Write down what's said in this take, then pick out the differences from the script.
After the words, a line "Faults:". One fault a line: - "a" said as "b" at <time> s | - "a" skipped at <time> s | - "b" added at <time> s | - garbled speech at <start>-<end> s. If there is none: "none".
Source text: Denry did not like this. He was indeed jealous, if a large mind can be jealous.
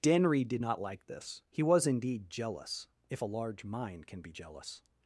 Denry did not like this. He was indeed jealous, if a large mind can be jealous.
Faults:
none